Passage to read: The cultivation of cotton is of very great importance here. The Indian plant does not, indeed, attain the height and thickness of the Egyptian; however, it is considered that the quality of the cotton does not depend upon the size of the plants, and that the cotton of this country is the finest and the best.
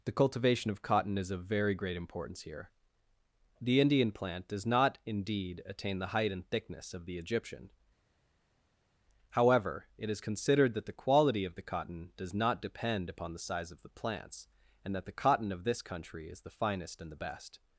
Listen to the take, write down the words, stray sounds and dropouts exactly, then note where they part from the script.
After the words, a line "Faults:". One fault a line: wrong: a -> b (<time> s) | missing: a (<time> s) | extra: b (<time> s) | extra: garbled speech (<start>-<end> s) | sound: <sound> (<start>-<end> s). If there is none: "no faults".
The cultivation of cotton is of very great importance here. The Indian plant does not, indeed, attain the height and thickness of the Egyptian; however, it is considered that the quality of the cotton does not depend upon the size of the plants, and that the cotton of this country is the finest and the best.
Faults:
no faults